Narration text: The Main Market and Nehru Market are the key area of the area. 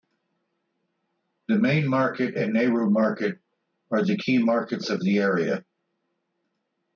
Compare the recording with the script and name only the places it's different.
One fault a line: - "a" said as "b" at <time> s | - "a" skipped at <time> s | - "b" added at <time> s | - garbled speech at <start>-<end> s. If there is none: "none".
- "area" said as "markets" at 4.4 s